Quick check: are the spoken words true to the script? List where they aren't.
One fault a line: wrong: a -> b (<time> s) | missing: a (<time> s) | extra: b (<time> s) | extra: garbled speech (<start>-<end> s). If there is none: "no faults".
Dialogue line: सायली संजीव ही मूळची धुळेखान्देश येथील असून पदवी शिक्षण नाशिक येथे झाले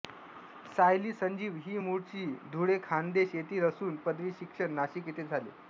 no faults